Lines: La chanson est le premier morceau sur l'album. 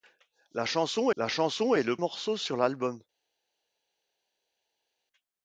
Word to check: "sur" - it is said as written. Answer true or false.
true